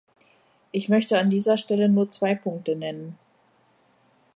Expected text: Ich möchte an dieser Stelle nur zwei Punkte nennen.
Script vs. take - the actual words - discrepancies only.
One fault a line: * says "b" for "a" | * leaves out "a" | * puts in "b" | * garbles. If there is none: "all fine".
all fine